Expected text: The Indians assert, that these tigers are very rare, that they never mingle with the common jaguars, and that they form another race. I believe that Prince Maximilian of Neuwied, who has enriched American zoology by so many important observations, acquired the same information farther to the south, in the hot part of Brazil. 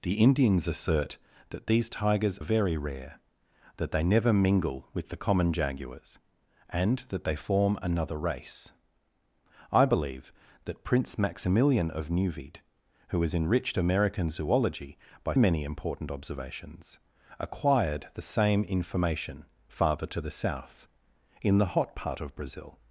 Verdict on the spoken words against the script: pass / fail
fail